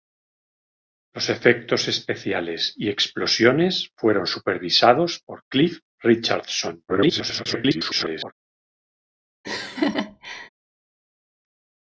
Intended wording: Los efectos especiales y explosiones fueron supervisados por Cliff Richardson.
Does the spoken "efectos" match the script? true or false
true